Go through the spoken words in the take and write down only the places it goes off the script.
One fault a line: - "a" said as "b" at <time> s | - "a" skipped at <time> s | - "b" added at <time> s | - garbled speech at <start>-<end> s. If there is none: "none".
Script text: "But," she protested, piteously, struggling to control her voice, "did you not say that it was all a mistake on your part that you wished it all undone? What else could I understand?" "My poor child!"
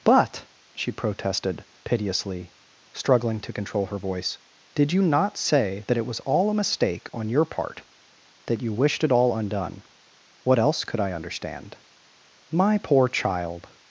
none